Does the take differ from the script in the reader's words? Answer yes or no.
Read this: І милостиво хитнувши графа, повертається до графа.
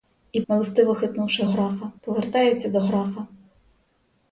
no